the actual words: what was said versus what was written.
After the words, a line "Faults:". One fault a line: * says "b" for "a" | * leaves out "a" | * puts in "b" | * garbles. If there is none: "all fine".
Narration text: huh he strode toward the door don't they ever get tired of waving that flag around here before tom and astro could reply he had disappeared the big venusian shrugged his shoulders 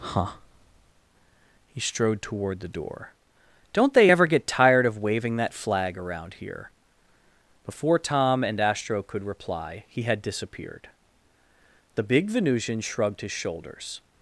huh he strode toward the door don't they ever get tired of waving that flag around here before tom and astro could reply he had disappeared the big venusian shrugged his shoulders
Faults:
all fine